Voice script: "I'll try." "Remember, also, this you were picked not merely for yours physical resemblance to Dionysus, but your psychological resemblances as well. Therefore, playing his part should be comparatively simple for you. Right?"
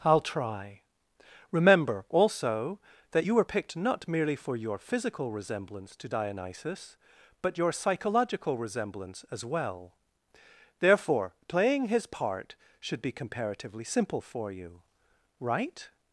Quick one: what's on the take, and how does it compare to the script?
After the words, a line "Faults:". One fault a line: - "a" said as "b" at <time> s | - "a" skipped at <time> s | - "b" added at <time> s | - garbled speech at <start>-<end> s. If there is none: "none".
"I'll try." "Remember, also, that you were picked not merely for your physical resemblance to Dionysus, but your psychological resemblance as well. Therefore, playing his part should be comparatively simple for you. Right?"
Faults:
- "this" said as "that" at 3.1 s
- "yours" said as "your" at 4.5 s
- "resemblances" said as "resemblance" at 8.6 s